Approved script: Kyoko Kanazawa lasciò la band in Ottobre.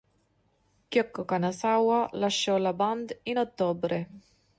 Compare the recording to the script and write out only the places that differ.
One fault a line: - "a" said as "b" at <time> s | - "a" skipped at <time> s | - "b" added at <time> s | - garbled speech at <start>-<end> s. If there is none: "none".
none